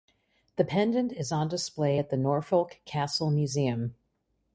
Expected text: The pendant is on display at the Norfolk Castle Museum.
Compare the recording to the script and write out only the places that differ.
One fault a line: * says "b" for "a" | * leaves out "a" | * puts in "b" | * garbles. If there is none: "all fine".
all fine